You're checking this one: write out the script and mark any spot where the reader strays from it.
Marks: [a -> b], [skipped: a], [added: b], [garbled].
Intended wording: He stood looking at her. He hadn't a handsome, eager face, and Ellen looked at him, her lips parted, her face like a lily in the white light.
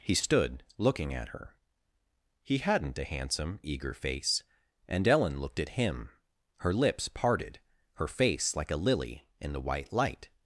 He stood looking at her. He hadn't a handsome, eager face, and Ellen looked at him, her lips parted, her face like a lily in the white light.